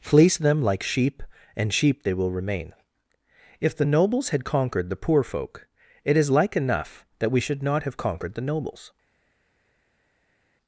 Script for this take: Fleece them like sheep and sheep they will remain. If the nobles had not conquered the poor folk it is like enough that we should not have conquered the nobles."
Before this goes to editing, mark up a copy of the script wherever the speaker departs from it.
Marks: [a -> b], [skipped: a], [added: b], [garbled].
Fleece them like sheep and sheep they will remain. If the nobles had [skipped: not] conquered the poor folk it is like enough that we should not have conquered the nobles."